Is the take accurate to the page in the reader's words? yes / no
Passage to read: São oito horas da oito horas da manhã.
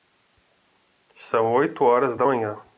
no